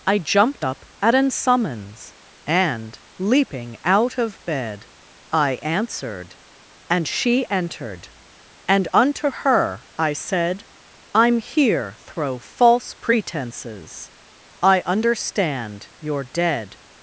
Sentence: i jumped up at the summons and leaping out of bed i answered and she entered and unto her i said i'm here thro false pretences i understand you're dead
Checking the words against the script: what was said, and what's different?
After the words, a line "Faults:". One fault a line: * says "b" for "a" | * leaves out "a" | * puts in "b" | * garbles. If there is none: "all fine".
i jumped up at an summons and leaping out of bed i answered and she entered and unto her i said i'm here thro false pretences i understand you're dead
Faults:
* says "an" for "the"